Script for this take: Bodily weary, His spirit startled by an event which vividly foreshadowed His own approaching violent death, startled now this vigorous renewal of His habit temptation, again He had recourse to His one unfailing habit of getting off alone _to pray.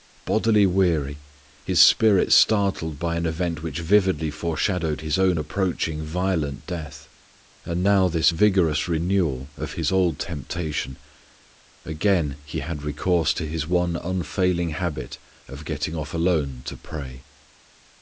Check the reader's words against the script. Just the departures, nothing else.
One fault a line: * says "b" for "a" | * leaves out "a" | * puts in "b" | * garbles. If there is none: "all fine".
* says "and" for "startled"
* says "old" for "habit"